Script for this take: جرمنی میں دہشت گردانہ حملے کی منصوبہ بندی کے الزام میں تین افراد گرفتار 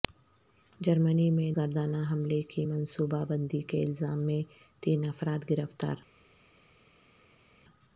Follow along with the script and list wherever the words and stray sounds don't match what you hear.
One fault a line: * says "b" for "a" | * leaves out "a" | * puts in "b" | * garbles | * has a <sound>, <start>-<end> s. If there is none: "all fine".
* leaves out "دہشت"